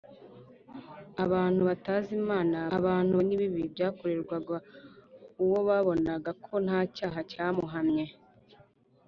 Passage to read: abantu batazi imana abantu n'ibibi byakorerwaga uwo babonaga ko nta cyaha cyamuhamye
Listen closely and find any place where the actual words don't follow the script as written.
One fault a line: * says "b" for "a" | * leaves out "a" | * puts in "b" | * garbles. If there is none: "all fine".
all fine